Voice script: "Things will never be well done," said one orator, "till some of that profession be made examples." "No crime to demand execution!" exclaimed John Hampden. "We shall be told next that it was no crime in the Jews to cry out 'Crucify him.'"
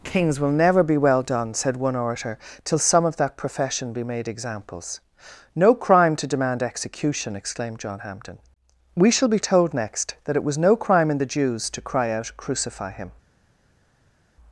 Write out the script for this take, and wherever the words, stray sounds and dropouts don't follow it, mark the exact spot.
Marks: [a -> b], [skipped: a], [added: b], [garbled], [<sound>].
["Things -> Kings] will never be well done," said one orator, "till some of that profession be made examples." "No crime to demand execution!" exclaimed John Hampden. "We shall be told next that it was no crime in the Jews to cry out 'Crucify him.'"